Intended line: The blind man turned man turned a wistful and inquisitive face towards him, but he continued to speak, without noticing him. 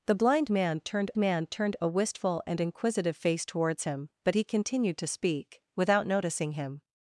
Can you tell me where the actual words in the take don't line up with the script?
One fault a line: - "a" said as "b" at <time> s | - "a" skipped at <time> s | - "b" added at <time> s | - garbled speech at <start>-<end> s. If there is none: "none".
none